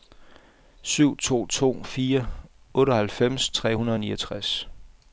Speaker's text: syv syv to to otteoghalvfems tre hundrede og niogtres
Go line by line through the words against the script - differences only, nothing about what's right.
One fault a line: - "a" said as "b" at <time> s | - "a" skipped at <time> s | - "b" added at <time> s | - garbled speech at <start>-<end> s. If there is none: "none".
- "syv" said as "to" at 1.2 s
- "to" said as "fire" at 1.8 s